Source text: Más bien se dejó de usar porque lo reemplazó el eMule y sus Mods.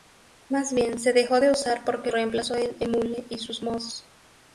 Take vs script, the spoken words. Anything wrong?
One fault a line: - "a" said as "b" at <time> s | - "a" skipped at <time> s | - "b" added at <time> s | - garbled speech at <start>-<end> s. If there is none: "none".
- "lo" skipped at 2.1 s